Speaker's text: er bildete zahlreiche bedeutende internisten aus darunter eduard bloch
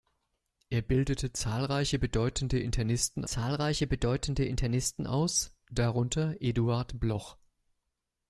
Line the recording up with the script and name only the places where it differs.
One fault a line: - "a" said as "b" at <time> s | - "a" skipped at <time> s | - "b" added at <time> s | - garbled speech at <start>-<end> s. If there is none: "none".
- "zahlreiche bedeutende internisten" added at 3.2 s